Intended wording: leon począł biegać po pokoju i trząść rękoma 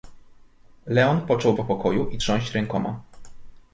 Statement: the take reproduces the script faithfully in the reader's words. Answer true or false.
false